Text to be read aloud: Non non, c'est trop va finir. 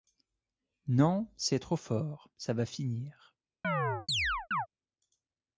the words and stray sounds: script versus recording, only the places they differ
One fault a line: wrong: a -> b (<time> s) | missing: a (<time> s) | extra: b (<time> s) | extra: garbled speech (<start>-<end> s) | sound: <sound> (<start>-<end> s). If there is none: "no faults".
missing: non (1.3 s)
extra: fort ça (1.8 s)
sound: chirp (3.6-4.7 s)